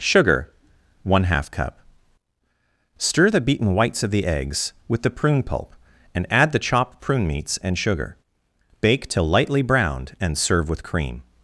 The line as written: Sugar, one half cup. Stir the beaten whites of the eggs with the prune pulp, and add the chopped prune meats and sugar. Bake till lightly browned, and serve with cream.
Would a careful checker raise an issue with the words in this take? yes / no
no